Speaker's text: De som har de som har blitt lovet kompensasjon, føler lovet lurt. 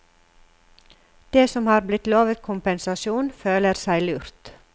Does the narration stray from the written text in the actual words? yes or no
yes